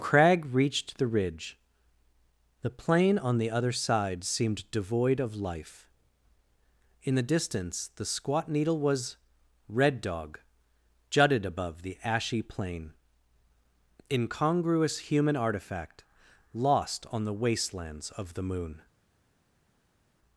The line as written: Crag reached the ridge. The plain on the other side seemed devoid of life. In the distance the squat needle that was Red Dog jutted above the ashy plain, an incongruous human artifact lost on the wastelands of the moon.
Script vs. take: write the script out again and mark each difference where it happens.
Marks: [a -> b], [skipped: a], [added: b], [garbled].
Crag reached the ridge. The plain on the other side seemed devoid of life. In the distance the squat needle [skipped: that] was Red Dog jutted above the ashy plain, [skipped: an] incongruous human artifact lost on the wastelands of the moon.